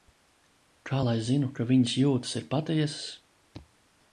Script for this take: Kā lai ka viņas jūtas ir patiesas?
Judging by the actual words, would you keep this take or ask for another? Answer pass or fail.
fail